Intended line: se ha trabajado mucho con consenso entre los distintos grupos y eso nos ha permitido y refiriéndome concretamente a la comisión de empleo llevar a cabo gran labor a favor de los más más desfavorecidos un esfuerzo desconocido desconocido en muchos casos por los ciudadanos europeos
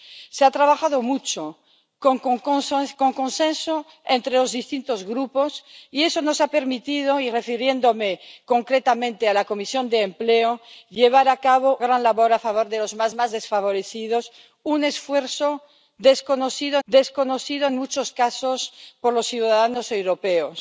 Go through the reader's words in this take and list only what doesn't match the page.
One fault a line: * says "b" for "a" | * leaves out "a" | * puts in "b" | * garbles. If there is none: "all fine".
all fine